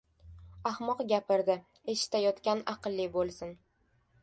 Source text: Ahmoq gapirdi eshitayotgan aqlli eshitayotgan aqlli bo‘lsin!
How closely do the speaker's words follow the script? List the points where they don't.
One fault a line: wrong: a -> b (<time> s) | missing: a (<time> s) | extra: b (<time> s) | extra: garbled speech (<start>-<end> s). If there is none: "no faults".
missing: eshitayotgan aqlli (3.1 s)